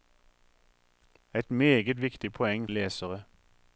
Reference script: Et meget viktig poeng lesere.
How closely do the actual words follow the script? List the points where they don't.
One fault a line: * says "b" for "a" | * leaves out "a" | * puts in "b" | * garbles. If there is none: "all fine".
all fine